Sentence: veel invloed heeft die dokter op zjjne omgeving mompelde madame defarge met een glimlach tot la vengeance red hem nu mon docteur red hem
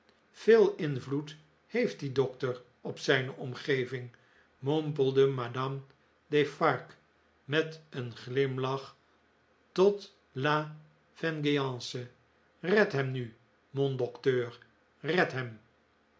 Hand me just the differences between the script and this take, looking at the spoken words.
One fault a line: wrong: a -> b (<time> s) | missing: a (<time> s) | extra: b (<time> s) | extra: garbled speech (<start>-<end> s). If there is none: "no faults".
no faults